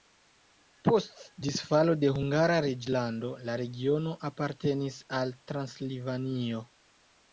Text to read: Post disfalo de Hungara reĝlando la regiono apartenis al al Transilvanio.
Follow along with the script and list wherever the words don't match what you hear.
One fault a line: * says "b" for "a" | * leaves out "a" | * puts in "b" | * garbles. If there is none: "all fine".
* leaves out "al"